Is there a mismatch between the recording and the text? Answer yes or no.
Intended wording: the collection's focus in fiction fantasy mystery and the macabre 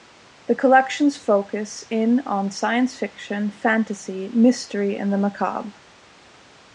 yes